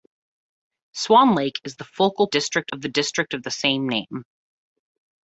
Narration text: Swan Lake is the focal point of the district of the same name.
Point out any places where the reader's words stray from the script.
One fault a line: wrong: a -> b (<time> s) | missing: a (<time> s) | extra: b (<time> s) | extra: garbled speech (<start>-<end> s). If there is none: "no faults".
wrong: point -> district (2.3 s)